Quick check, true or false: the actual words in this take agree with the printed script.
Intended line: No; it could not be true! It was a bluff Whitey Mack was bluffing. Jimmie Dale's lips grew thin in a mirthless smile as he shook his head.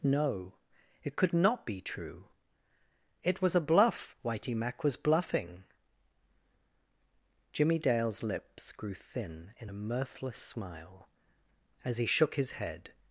true